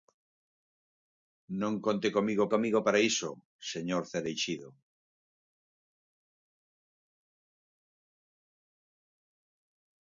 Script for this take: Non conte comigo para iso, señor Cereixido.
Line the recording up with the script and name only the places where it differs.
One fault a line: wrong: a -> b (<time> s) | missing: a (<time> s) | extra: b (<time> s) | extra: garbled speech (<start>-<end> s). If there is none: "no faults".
extra: comigo (2.5 s)